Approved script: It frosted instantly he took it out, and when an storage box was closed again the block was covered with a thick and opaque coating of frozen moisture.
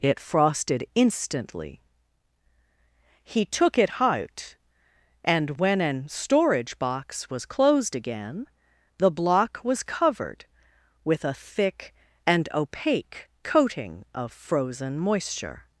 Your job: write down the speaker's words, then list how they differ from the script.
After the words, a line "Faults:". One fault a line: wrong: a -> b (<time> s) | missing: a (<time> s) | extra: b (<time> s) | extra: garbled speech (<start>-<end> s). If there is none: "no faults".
It frosted instantly he took it out, and when an storage box was closed again the block was covered with a thick and opaque coating of frozen moisture.
Faults:
no faults